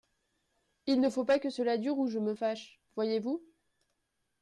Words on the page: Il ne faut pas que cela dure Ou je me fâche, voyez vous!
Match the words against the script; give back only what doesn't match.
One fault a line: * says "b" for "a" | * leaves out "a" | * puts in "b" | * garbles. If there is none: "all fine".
all fine